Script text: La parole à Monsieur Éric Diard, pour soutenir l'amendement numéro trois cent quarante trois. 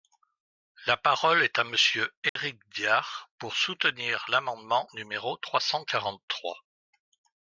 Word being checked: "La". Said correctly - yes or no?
yes